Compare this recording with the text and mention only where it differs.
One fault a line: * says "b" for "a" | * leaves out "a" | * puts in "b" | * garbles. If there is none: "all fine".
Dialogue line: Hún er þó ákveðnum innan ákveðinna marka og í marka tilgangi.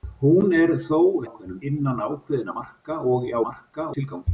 all fine